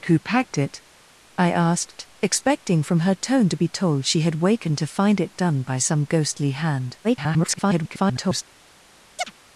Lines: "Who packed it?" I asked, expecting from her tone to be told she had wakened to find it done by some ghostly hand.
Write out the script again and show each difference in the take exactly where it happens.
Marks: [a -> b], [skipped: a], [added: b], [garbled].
"Who packed it?" I asked, expecting from her tone to be told she had wakened to find it done by some ghostly hand. [garbled]